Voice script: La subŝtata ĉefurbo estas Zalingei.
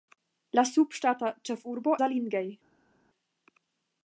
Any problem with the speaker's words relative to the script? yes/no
yes